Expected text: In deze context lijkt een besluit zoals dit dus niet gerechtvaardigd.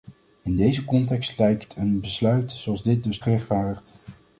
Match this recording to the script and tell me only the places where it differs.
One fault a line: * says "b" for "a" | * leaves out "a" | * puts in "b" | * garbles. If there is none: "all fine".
* leaves out "niet"